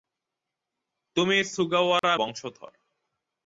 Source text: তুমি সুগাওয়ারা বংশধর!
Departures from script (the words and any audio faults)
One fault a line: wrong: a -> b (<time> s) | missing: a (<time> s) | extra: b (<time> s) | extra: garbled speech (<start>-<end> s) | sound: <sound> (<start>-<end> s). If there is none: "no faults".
sound: dropout (2.0-2.0 s)